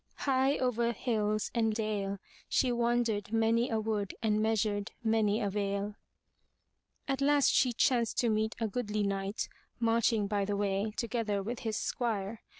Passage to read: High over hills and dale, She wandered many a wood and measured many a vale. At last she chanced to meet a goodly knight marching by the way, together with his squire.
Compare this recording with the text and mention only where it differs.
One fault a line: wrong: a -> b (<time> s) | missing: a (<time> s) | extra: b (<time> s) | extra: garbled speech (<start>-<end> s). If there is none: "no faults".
no faults